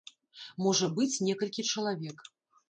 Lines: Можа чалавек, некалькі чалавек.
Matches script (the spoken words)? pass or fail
fail